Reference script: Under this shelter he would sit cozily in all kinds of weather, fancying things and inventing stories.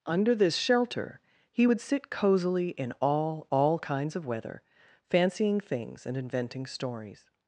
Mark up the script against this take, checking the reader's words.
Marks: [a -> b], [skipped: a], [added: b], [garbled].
Under this shelter he would sit cozily in all [added: all] kinds of weather, fancying things and inventing stories.